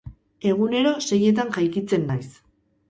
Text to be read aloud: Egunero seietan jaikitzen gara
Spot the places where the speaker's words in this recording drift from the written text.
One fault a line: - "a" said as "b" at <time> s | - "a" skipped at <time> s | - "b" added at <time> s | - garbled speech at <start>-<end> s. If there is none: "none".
- "gara" said as "naiz" at 2.1 s